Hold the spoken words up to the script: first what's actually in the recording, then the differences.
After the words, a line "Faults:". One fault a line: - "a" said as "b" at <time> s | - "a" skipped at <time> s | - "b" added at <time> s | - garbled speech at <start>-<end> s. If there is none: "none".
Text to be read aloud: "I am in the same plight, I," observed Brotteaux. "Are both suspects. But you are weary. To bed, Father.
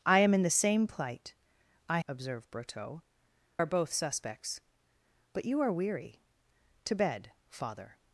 "I am in the same plight, I," observed Brotteaux. "Are both suspects. But you are weary. To bed, Father.
Faults:
none